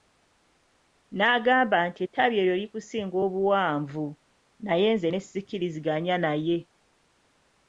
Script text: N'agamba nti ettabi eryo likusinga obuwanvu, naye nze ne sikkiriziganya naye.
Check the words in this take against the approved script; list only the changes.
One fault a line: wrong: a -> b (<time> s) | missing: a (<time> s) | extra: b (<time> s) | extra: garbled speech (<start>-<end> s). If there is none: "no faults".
no faults